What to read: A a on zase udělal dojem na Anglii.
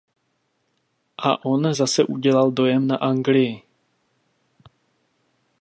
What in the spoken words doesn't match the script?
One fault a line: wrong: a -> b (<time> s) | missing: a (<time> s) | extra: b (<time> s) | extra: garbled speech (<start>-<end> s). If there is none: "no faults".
missing: a (1.4 s)